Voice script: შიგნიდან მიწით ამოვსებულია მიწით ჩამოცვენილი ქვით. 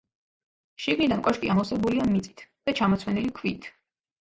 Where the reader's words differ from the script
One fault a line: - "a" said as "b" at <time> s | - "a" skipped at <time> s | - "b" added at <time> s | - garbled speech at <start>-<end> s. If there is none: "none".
- "მიწით" said as "კოშკი" at 1.3 s
- "და" added at 2.5 s